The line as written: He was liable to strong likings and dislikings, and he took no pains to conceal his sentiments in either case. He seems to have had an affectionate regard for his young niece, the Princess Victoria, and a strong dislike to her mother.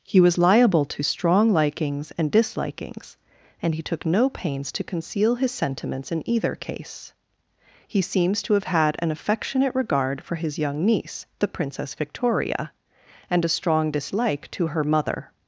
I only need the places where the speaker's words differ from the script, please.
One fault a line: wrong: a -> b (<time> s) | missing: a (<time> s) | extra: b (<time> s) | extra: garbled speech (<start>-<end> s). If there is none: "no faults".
no faults